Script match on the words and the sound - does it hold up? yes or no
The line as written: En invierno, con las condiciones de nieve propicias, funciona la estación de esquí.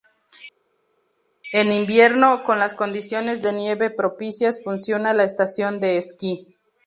yes